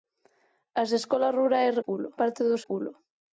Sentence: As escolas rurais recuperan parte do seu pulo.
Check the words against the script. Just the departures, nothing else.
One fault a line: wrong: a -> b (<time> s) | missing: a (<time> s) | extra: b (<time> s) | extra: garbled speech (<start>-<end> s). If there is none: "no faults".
wrong: recuperan -> pulo (1.8 s)
missing: seu (2.6 s)